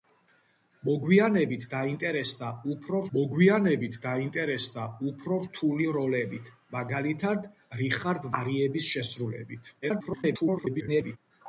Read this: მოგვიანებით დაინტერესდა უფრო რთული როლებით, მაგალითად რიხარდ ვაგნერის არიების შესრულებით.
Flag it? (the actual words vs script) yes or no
yes